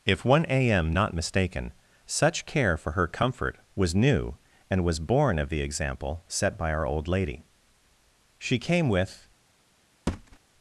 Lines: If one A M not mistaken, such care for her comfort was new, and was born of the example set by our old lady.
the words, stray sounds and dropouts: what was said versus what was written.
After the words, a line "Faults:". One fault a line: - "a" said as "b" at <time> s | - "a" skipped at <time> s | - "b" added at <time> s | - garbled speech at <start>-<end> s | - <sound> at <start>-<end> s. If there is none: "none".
If one A M not mistaken, such care for her comfort was new, and was born of the example set by our old lady. She came with
Faults:
- "She came with" added at 8.4 s
- thud at 10.1-10.4 s